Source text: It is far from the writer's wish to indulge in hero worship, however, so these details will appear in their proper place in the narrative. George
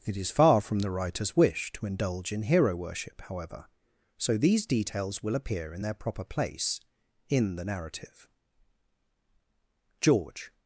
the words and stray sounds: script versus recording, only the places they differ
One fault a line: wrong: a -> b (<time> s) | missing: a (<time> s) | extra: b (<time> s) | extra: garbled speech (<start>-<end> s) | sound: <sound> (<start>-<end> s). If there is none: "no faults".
no faults